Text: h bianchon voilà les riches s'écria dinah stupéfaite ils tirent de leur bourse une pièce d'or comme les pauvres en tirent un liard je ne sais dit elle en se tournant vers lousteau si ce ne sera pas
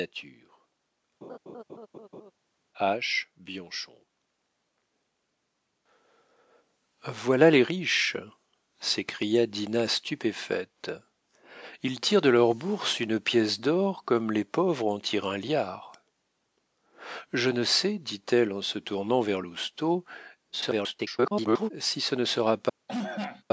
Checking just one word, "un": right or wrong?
right